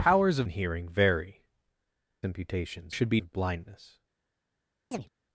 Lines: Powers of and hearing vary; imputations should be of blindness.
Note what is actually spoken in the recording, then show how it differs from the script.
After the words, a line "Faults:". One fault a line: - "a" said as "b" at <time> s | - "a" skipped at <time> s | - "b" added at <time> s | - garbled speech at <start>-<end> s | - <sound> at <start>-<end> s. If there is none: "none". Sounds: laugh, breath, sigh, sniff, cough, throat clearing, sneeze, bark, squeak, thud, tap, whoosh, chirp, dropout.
Powers of and hearing vary; imputations should be of blindness.
Faults:
- chirp at 4.9-5.1 s